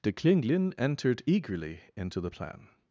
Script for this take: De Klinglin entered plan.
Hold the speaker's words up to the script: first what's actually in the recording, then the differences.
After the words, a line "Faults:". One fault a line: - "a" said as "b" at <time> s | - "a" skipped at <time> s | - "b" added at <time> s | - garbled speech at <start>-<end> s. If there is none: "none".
De Klinglin entered eagerly into the plan.
Faults:
- "eagerly into the" added at 1.3 s